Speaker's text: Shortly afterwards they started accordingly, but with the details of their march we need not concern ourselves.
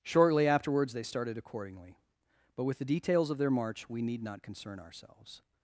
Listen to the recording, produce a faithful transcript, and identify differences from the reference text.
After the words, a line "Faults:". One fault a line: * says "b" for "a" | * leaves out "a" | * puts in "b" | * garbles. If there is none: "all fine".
Shortly afterwards they started accordingly, but with the details of their march we need not concern ourselves.
Faults:
all fine